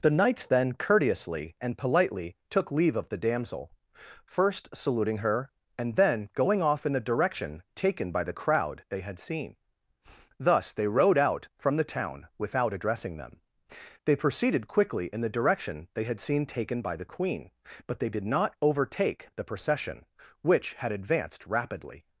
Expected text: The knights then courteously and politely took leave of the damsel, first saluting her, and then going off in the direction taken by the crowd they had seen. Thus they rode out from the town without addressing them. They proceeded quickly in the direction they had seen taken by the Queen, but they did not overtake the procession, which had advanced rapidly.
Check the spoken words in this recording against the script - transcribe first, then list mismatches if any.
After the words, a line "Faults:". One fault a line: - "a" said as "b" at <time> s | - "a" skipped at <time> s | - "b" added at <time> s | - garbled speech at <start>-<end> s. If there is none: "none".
The knights then courteously and politely took leave of the damsel, first saluting her, and then going off in the direction taken by the crowd they had seen. Thus they rode out from the town without addressing them. They proceeded quickly in the direction they had seen taken by the Queen, but they did not overtake the procession, which had advanced rapidly.
Faults:
none